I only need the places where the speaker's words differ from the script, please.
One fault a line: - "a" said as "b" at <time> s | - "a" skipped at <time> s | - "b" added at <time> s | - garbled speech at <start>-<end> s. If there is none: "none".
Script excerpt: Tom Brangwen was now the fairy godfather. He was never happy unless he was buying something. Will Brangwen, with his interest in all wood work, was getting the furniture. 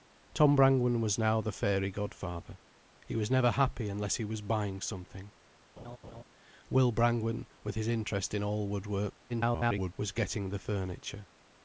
- garbled speech at 9.3-9.9 s